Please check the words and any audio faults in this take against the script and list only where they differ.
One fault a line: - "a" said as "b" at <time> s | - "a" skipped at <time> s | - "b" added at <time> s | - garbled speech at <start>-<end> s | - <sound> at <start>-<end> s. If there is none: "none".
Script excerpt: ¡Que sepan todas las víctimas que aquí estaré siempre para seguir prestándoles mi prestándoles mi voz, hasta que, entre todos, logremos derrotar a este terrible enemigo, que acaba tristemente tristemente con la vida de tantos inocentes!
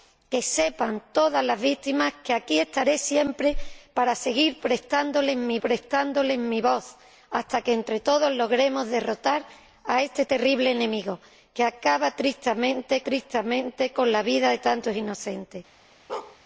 - bark at 16.1-16.4 s